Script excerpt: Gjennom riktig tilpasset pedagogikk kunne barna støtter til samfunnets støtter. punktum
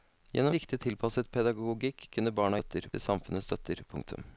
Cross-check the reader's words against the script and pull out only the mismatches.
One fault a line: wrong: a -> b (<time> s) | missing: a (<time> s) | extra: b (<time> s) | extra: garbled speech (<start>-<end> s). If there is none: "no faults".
no faults